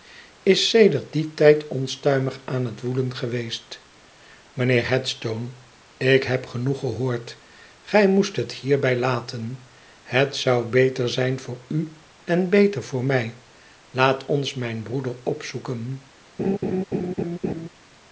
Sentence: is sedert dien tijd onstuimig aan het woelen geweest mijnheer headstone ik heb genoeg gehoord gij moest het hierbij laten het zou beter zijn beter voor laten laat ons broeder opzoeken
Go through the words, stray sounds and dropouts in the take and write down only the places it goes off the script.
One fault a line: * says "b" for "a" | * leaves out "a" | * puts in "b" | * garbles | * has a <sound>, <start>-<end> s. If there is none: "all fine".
* puts in "voor u en"
* says "mij" for "laten"
* puts in "mijn"
* has a laugh, 16.4-17.7 s